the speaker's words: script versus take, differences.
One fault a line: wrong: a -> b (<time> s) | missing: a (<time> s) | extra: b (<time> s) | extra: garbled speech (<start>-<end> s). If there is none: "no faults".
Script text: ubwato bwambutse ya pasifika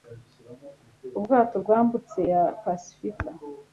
no faults